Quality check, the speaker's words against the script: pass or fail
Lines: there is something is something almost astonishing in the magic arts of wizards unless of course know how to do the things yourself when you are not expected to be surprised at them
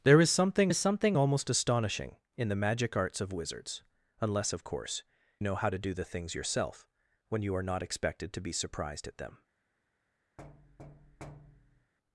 pass